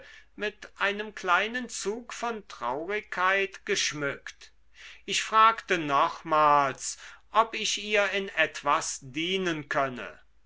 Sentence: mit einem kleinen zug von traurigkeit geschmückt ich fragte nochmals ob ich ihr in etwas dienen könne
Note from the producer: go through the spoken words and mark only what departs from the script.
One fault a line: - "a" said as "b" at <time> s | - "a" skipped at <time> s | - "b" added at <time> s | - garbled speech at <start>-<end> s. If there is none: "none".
none